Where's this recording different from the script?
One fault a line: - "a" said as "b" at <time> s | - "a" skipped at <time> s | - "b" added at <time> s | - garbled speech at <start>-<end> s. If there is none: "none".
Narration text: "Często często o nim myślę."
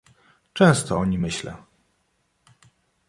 - "często" skipped at 1.0 s